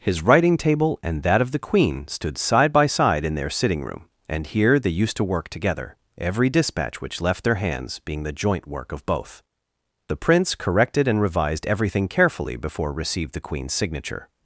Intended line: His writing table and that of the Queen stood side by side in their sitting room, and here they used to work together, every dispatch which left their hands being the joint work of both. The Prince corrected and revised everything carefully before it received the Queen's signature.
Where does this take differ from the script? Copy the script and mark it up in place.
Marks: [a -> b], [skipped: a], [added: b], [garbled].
His writing table and that of the Queen stood side by side in their sitting room, and here they used to work together, every dispatch which left their hands being the joint work of both. The Prince corrected and revised everything carefully before [skipped: it] received the Queen's signature.